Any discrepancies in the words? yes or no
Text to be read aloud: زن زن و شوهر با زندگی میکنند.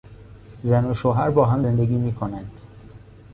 yes